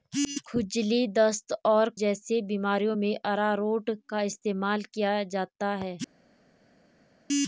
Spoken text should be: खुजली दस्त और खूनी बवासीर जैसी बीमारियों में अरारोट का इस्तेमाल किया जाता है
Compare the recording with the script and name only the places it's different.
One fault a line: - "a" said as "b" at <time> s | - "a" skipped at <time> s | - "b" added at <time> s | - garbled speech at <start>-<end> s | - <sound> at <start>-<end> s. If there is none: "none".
- "खूनी बवासीर" skipped at 1.9 s